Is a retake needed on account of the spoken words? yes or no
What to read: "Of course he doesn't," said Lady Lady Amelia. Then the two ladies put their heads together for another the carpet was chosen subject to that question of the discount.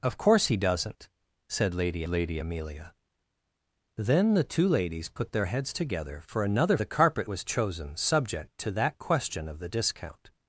no